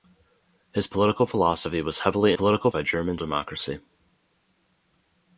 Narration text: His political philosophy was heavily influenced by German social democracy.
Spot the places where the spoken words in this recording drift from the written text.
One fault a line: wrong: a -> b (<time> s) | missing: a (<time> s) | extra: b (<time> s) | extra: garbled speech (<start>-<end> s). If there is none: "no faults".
wrong: influenced -> political (2.3 s)
missing: social (3.2 s)